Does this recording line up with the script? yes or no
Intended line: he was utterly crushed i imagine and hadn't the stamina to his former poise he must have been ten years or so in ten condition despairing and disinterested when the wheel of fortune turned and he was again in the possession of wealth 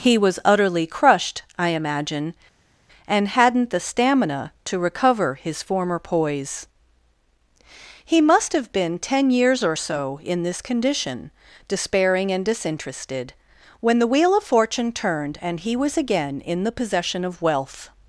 no